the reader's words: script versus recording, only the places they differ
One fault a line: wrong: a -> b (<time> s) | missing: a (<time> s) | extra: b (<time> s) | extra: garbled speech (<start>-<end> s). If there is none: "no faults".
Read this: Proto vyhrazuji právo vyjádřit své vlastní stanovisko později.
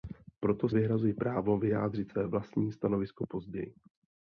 no faults